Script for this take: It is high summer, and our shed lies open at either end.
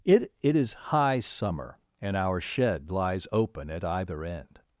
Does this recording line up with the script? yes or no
no